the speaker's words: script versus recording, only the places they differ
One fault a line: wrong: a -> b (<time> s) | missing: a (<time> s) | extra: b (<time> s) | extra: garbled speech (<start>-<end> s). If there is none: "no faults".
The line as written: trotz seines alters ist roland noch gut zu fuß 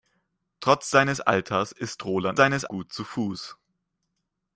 wrong: noch -> seines (2.3 s)